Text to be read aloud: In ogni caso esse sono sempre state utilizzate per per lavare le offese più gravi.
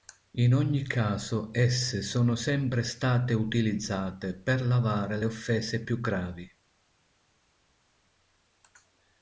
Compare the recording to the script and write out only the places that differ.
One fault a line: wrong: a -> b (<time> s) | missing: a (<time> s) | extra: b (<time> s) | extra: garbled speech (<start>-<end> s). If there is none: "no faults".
missing: per (4.7 s)